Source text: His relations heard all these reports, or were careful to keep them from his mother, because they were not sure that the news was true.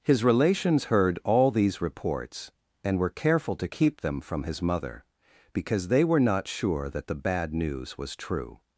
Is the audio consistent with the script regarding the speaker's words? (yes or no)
no